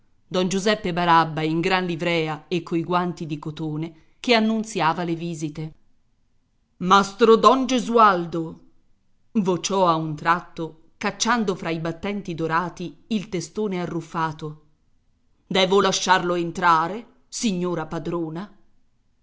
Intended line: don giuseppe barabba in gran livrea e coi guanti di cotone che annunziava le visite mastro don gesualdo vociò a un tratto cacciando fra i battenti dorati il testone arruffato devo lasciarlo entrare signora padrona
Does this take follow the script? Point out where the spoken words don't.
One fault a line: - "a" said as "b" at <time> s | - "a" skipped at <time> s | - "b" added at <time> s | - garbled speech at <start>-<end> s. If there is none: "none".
none